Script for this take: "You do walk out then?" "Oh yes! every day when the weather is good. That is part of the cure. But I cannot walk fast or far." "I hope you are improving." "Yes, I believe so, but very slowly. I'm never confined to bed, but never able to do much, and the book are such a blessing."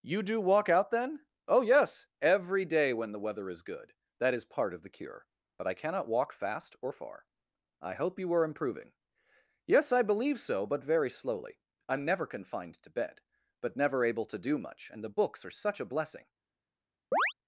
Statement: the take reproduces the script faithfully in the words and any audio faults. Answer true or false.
false